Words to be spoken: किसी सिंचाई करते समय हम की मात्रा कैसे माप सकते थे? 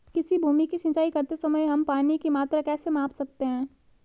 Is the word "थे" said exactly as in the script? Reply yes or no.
no